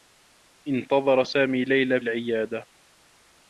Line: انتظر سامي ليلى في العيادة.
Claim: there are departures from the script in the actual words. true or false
true